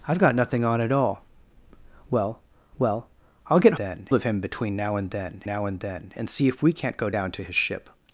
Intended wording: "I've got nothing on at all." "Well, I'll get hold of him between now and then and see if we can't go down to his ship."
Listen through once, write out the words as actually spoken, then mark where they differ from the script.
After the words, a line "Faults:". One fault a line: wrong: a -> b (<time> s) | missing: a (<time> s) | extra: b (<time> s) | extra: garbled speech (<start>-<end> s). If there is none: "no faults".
"I've got nothing on at all." "Well well, I'll get then of him between now and then now and then and see if we can't go down to his ship."
Faults:
extra: well (2.8 s)
wrong: hold -> then (3.8 s)
extra: now and then (5.4 s)